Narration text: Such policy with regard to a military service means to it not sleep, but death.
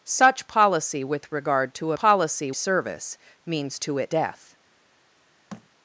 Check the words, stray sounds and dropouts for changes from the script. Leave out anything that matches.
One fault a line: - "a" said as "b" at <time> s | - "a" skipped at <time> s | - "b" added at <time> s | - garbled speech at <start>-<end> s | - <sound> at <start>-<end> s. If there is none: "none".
- "military" said as "policy" at 1.9 s
- "not sleep but" skipped at 4.1 s
- thud at 5.5-5.7 s